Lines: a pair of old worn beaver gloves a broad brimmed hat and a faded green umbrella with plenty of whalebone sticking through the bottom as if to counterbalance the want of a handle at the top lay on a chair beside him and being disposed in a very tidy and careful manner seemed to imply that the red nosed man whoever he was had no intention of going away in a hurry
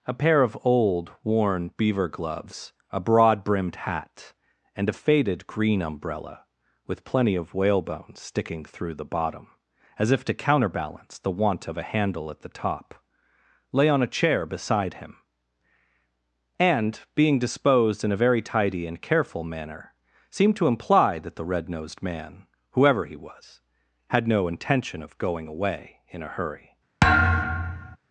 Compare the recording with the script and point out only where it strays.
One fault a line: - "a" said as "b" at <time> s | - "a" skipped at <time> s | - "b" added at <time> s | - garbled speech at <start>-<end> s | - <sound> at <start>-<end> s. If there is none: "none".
- thud at 27.0-28.0 s